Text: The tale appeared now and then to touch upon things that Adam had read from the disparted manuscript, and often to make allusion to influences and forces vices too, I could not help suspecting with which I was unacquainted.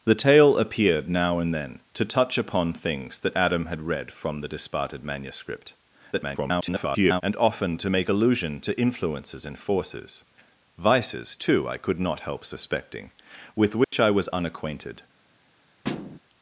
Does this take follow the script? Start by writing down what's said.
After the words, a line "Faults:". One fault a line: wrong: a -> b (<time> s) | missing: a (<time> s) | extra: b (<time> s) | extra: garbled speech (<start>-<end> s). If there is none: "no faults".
The tale appeared now and then to touch upon things that Adam had read from the disparted manuscript, [garbled] and often to make allusion to influences and forces vices too, I could not help suspecting with which I was unacquainted.
Faults:
extra: garbled speech (6.1-7.2 s)